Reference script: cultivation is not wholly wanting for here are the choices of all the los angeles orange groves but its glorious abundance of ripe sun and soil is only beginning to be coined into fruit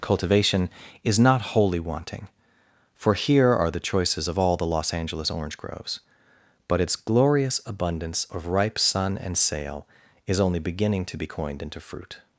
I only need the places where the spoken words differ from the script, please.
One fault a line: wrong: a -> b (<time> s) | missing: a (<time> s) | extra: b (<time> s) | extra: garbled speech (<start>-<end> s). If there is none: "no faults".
wrong: soil -> sail (9.4 s)